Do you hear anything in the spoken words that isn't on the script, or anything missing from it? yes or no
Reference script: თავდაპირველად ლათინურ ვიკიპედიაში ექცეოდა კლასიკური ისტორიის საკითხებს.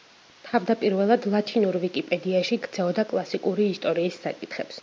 no